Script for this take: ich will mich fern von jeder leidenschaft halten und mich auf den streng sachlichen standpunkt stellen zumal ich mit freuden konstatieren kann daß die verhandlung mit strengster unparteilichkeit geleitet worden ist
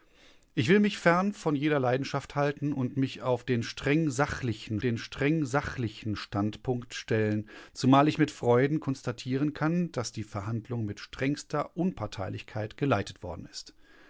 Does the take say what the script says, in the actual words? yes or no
no